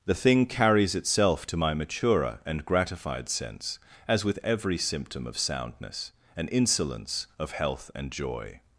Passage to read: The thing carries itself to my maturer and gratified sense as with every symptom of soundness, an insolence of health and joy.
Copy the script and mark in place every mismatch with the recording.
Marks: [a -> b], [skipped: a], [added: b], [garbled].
The thing carries itself to my maturer and gratified sense as with every symptom of soundness, an insolence of health and joy.